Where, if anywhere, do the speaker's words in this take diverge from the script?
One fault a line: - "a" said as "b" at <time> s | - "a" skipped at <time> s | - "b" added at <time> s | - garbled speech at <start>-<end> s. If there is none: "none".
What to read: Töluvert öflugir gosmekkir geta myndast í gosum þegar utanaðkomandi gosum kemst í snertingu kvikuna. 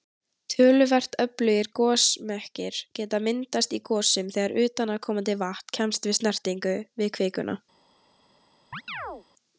- "gosum" said as "vatn" at 5.5 s
- "við" added at 7.0 s